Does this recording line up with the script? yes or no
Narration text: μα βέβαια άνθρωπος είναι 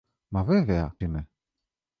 no